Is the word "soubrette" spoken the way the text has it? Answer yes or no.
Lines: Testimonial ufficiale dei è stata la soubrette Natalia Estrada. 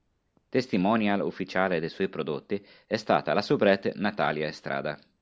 yes